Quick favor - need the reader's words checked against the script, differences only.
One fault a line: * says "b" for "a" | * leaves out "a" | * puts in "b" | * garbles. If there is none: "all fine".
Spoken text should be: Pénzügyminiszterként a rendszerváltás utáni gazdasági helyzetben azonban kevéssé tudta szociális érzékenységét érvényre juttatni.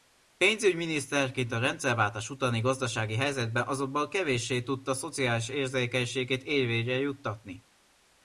all fine